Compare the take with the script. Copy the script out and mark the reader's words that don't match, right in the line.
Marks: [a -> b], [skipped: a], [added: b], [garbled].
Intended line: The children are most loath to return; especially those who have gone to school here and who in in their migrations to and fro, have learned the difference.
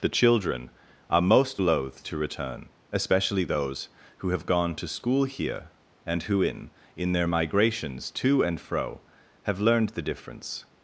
The children are most loath to return; especially those who have gone to school here and who in in their migrations to and fro, have learned the difference.